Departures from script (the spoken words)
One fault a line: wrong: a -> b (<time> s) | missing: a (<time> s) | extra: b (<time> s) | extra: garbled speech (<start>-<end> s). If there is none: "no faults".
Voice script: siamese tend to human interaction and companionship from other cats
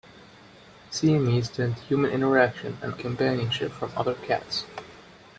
no faults